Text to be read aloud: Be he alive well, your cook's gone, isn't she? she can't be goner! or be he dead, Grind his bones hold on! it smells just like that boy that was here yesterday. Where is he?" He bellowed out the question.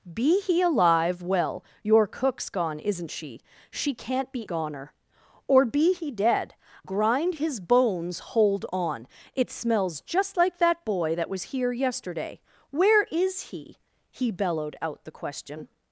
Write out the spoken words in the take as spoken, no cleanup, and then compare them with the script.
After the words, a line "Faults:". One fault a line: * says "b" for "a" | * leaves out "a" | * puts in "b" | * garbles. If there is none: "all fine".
Be he alive well, your cook's gone, isn't she? she can't be goner! or be he dead, Grind his bones hold on! it smells just like that boy that was here yesterday. Where is he?" He bellowed out the question.
Faults:
all fine